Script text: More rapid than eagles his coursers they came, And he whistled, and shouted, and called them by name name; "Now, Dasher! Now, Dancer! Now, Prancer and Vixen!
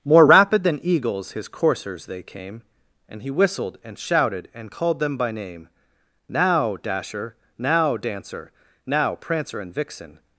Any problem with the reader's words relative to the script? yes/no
yes